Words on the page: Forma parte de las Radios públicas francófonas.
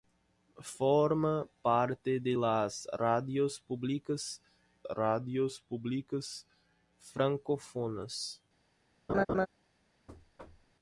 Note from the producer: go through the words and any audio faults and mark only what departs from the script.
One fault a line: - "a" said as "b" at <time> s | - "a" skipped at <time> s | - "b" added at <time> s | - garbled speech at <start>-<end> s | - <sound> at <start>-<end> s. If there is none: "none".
- "Radios públicas" added at 4.9 s
- laugh at 9.1-9.5 s
- thud at 10.1-10.8 s